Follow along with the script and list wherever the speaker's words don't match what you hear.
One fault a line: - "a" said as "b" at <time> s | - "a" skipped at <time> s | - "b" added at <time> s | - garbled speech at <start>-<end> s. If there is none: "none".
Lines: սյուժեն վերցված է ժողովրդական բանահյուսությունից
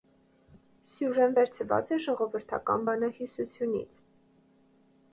none